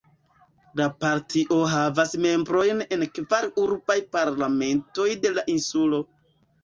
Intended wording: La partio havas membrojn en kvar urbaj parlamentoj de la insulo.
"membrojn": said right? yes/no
yes